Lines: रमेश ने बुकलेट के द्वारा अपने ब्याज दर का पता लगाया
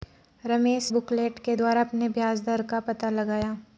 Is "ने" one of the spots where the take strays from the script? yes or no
yes